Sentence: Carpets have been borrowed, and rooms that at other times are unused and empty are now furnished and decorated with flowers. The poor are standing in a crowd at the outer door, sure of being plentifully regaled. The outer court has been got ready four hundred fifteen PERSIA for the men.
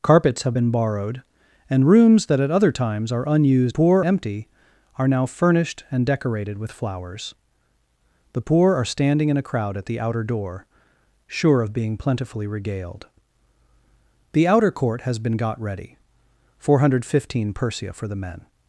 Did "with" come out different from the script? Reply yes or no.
no